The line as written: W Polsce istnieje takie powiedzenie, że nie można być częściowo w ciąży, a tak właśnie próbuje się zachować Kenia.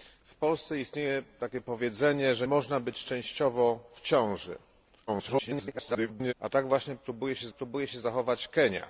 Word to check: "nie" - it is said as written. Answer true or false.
false